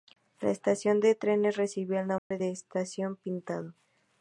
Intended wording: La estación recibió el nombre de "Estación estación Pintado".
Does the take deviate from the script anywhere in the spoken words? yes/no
yes